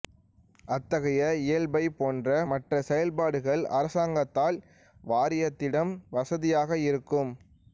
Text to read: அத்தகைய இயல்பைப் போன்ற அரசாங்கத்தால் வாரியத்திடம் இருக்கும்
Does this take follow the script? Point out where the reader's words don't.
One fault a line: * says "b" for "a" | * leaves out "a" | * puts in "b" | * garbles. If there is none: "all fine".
* puts in "மற்ற செயல்பாடுகள்"
* puts in "வசதியாக"